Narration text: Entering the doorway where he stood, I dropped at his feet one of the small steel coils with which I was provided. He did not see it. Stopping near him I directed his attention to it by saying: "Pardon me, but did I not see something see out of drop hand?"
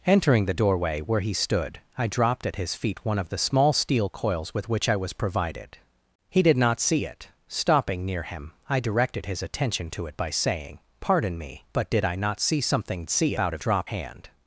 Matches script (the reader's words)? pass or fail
pass